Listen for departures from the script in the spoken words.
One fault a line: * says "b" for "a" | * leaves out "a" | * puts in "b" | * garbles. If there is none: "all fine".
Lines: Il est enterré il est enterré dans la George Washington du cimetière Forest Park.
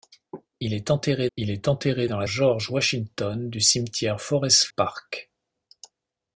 all fine